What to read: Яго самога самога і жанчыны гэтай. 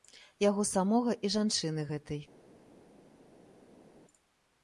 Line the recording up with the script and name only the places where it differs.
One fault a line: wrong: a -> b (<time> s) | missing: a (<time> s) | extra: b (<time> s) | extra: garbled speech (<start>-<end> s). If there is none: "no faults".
missing: самога (1.1 s)